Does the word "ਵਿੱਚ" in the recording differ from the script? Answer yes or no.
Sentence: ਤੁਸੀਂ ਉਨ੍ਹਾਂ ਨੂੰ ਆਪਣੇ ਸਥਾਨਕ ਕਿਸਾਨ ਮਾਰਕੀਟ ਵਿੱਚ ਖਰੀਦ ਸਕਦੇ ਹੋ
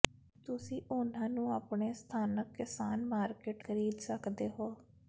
yes